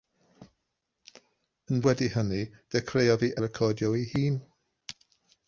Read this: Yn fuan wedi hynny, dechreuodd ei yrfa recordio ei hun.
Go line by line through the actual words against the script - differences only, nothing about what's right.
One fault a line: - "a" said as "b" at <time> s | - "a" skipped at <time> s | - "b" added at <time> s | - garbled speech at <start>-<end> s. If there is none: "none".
- "fuan" skipped at 1.8 s
- "yrfa" skipped at 3.3 s